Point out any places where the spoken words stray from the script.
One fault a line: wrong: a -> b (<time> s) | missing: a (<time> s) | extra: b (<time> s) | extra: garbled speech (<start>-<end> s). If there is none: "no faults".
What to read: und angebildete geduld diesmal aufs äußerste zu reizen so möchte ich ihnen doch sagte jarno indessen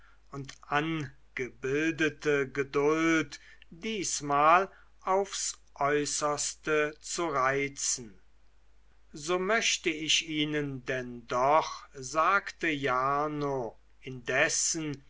extra: denn (10.8 s)